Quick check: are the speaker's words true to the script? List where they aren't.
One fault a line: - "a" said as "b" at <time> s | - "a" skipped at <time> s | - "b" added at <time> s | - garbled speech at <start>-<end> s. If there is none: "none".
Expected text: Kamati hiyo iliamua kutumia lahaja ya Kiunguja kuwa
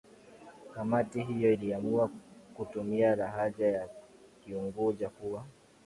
none